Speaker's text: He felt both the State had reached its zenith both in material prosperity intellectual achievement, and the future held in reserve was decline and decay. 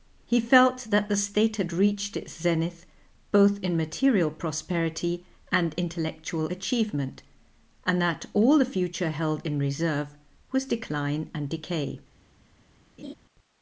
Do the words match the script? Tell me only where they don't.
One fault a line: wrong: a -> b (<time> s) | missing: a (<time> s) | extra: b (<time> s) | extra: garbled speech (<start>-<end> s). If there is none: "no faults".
wrong: both -> that (0.9 s)
extra: and (5.5 s)
extra: that all (8.0 s)